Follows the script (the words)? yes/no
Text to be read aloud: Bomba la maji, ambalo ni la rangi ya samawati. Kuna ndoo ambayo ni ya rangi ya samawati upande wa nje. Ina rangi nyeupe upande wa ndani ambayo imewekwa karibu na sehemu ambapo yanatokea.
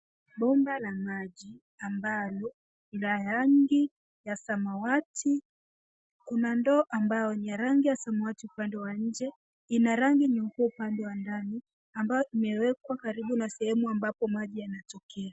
no